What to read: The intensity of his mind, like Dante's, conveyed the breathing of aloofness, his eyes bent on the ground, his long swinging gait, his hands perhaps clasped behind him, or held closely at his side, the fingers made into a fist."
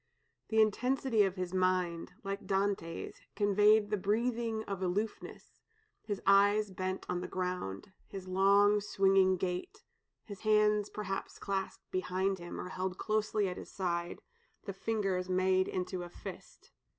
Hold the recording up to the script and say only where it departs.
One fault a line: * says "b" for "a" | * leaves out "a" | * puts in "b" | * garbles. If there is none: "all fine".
all fine